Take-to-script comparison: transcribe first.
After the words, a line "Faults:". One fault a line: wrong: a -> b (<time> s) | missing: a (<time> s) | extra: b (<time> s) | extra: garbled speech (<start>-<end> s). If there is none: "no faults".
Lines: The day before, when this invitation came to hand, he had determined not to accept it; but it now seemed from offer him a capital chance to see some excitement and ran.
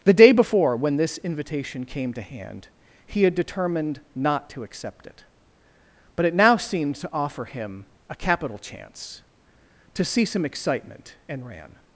The day before, when this invitation came to hand, he had determined not to accept it; but it now seemed to offer him a capital chance to see some excitement and ran.
Faults:
wrong: from -> to (7.0 s)